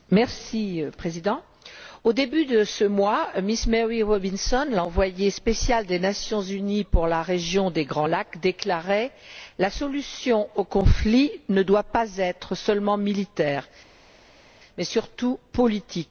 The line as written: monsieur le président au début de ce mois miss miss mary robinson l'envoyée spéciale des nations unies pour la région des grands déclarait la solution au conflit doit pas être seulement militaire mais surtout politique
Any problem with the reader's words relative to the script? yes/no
yes